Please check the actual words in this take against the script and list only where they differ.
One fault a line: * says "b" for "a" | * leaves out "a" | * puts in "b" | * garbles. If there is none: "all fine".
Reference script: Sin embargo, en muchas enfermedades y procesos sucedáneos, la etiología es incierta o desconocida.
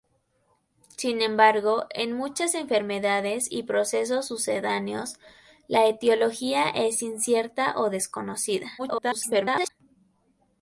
* garbles